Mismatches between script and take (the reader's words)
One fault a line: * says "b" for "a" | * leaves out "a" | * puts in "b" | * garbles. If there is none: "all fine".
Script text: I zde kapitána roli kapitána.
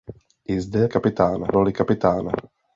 all fine